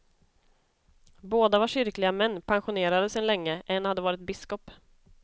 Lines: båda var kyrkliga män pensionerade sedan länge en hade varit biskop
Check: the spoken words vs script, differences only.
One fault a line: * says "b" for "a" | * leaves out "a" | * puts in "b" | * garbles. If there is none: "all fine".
all fine